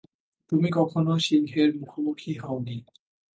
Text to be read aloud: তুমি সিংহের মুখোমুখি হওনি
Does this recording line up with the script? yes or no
no